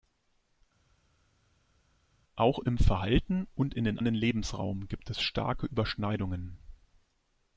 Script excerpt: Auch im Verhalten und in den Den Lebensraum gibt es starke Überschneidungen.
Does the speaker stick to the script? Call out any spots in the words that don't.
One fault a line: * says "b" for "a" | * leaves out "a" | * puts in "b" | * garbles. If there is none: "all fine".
all fine